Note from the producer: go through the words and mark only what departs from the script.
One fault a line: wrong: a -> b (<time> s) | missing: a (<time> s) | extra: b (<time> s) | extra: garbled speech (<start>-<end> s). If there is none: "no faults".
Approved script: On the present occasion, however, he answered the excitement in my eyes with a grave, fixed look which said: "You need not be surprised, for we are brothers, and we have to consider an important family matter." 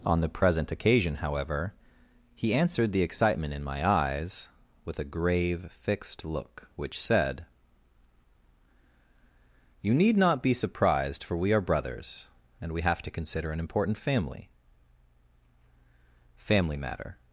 extra: family (16.4 s)